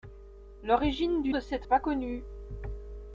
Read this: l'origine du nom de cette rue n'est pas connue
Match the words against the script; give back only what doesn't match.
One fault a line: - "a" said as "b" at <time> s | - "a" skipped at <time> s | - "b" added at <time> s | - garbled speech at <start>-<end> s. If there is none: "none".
- "nom" skipped at 1.4 s
- "rue n'est" skipped at 1.7 s